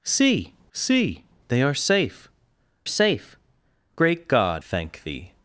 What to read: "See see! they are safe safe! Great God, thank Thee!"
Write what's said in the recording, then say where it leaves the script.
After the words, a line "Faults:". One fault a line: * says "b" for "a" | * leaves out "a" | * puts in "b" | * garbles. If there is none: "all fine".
"See see! they are safe safe! Great God, thank Thee!"
Faults:
all fine